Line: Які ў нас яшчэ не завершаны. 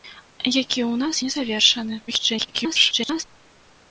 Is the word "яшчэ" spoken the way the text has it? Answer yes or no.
no